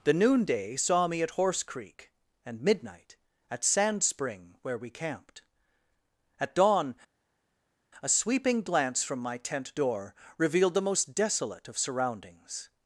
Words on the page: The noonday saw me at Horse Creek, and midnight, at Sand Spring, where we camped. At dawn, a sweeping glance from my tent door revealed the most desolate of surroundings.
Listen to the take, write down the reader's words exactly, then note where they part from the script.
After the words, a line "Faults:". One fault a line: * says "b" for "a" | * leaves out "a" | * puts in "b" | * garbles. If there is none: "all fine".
The noonday saw me at Horse Creek, and midnight, at Sand Spring, where we camped. At dawn, a sweeping glance from my tent door revealed the most desolate of surroundings.
Faults:
all fine